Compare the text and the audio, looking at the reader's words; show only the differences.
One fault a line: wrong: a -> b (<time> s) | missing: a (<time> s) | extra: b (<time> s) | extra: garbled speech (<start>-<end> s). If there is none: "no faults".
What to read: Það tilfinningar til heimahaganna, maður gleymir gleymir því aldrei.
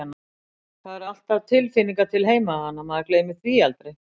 extra: eru alltaf (0.9 s)
missing: gleymir (3.4 s)